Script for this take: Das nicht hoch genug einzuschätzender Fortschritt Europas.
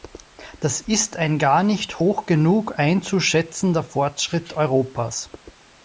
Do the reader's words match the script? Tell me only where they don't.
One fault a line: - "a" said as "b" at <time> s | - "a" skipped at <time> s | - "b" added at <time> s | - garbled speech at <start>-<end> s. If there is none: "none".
- "ist ein gar" added at 0.8 s